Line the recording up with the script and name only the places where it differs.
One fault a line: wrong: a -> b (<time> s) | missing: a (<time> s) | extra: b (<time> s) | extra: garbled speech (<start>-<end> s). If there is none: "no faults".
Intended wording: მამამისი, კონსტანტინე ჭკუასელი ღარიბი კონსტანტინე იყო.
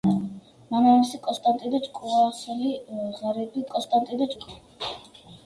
no faults